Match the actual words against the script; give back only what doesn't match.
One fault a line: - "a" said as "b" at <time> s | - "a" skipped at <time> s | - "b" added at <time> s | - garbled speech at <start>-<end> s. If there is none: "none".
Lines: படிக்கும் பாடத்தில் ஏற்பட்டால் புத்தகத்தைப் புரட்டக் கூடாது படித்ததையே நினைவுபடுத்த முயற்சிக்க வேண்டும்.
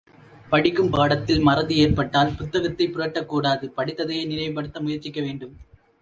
- "மறதி" added at 1.4 s